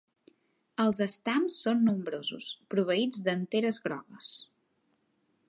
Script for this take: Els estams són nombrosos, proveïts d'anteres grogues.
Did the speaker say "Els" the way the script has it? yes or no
yes